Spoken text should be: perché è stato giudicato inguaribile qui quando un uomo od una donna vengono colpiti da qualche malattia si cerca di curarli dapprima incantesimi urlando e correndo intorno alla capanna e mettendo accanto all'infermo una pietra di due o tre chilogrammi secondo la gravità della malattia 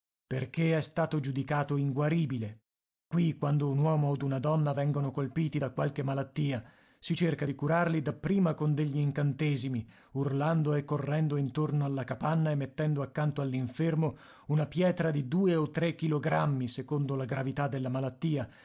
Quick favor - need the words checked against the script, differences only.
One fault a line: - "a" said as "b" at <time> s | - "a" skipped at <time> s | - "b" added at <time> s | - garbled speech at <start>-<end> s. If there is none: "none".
- "con degli" added at 8.5 s